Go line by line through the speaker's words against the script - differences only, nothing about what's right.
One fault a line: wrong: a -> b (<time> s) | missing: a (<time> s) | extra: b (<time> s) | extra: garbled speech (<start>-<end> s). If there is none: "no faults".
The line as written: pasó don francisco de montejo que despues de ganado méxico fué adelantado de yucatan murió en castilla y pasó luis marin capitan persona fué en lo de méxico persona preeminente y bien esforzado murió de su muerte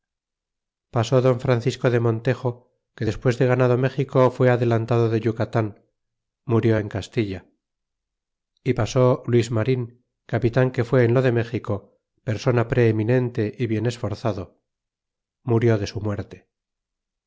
wrong: persona -> que (10.7 s)